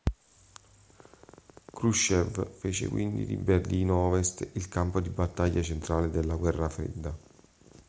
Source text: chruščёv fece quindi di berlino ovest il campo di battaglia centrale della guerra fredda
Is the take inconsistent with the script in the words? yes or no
no